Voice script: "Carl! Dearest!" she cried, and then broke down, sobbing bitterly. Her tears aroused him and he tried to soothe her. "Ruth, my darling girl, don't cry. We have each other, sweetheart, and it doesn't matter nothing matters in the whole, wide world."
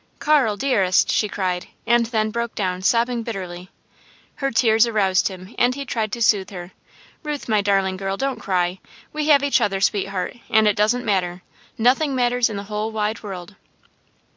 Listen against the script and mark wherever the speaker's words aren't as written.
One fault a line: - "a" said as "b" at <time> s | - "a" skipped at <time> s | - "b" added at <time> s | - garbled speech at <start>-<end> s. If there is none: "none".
none